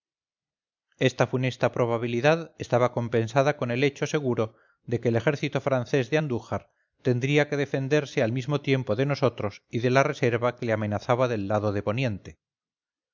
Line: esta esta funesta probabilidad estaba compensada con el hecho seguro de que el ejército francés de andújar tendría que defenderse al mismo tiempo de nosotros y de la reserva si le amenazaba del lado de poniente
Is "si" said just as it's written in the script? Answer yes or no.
no